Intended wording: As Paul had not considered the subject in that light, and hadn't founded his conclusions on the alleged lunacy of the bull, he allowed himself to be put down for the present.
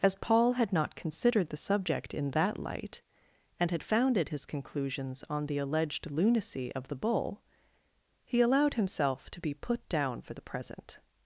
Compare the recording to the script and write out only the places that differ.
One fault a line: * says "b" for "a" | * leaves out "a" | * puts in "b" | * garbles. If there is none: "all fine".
* says "had" for "hadn't"